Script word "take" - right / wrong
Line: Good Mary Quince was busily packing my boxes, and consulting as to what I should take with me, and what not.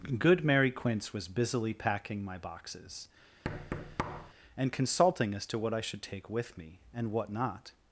right